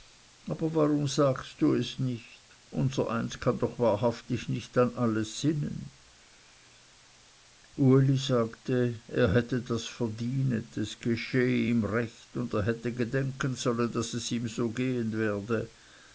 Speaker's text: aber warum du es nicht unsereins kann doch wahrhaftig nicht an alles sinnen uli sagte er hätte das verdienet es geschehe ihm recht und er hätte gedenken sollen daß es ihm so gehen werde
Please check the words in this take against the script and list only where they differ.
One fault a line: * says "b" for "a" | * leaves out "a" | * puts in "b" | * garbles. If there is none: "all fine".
* puts in "sagst"